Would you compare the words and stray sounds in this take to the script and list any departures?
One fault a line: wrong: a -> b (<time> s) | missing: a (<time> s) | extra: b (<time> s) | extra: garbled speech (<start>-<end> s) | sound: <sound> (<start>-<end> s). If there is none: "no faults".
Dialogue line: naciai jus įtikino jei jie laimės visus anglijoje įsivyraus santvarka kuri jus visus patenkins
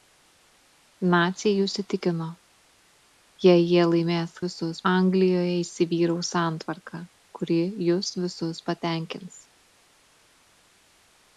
no faults